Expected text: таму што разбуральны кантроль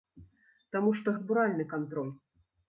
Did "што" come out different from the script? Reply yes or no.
no